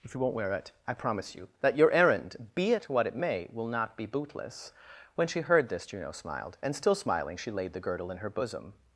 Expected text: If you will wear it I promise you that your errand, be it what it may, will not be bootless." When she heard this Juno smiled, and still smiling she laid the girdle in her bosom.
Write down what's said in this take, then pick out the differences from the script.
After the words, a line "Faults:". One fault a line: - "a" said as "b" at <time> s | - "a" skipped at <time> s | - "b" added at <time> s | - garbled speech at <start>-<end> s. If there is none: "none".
If you won't wear it I promise you that your errand, be it what it may, will not be bootless." When she heard this Juno smiled, and still smiling she laid the girdle in her bosom.
Faults:
- "will" said as "won't" at 0.2 s